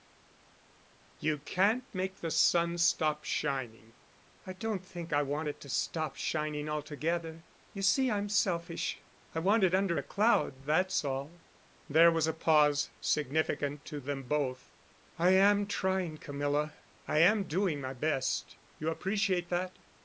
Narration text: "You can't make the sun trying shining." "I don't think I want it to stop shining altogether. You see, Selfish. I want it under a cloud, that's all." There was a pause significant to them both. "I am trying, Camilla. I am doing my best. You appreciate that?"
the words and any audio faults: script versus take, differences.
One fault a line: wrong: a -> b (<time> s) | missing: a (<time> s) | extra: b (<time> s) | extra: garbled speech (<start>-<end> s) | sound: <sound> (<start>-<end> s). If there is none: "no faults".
wrong: trying -> stop (2.8 s)
extra: I'm (8.1 s)